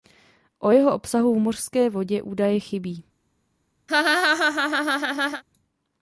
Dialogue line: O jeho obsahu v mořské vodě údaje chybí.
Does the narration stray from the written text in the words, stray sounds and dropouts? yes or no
yes